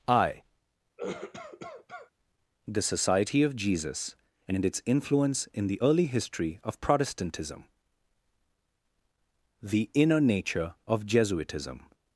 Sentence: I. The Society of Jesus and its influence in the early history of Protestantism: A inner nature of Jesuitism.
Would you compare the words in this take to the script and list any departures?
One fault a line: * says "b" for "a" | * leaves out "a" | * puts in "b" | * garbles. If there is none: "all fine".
* says "The" for "A"